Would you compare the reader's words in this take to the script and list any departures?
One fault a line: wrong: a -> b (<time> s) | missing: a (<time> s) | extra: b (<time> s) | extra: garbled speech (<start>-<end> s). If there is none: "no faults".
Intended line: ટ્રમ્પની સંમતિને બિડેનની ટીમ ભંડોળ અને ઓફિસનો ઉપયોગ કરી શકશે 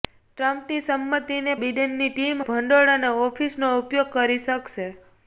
no faults